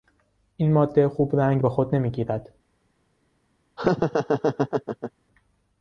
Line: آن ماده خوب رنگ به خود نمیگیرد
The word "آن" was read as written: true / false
false